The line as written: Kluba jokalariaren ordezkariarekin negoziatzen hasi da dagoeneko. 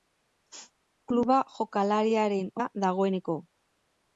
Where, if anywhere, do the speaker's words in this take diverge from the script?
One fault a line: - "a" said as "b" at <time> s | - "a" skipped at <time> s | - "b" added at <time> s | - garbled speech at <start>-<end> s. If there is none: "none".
- "ordezkariarekin negoziatzen hasi" skipped at 2.5 s